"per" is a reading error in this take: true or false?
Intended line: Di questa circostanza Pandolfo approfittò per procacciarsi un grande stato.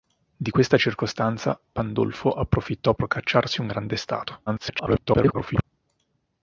true